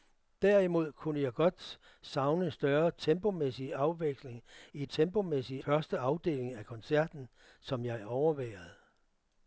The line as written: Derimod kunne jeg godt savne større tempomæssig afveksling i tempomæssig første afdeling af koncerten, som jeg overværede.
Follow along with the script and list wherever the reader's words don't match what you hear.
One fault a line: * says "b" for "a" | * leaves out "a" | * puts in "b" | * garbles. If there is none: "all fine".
all fine